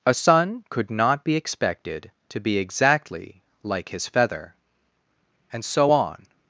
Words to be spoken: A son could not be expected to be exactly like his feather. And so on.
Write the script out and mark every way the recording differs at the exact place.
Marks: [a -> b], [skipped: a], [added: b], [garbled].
A son could not be expected to be exactly like his feather. And so on.